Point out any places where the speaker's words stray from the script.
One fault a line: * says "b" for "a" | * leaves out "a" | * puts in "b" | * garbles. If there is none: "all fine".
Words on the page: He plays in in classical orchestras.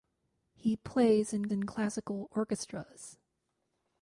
all fine